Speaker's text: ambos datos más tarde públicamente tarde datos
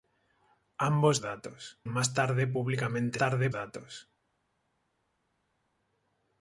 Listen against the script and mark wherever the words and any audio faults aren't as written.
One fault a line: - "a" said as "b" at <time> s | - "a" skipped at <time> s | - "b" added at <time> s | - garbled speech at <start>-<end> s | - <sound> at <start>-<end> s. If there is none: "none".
none